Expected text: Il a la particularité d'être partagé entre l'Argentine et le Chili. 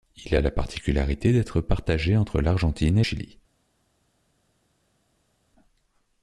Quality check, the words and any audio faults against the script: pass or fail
fail